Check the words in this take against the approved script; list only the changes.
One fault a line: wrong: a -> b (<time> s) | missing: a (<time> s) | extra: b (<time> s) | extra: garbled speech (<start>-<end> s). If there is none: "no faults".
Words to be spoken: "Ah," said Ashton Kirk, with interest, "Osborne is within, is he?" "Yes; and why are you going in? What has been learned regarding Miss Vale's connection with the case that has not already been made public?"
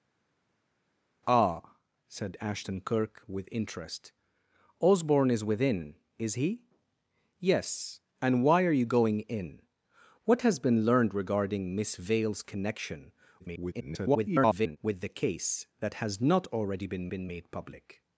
extra: garbled speech (13.4-14.8 s)
extra: been (17.1 s)